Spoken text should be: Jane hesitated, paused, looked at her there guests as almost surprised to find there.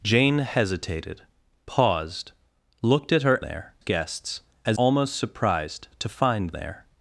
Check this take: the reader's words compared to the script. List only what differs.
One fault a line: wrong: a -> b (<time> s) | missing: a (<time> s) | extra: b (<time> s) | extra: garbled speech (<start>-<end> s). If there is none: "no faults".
no faults